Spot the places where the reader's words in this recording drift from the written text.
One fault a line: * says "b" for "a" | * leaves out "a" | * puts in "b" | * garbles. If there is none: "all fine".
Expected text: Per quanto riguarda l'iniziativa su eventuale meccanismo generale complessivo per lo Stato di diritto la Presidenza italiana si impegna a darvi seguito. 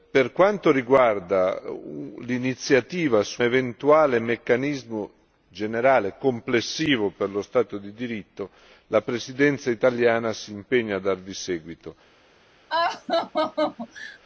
all fine